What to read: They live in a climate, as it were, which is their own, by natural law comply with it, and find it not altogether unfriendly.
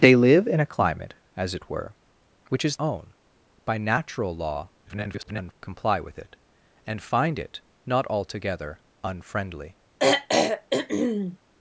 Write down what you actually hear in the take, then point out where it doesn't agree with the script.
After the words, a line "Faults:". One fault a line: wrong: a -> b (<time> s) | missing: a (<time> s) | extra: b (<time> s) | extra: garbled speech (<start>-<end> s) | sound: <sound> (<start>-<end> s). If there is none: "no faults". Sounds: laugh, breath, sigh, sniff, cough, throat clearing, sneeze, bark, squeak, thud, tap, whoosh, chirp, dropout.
They live in a climate, as it were, which is own, by natural law [garbled] comply with it, and find it not altogether unfriendly.
Faults:
missing: their (2.8 s)
extra: garbled speech (4.8-5.5 s)
sound: throat clearing (10.0-11.4 s)